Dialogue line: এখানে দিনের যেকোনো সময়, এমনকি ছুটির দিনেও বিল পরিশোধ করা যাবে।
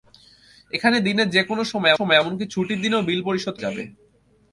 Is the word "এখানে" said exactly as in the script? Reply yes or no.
yes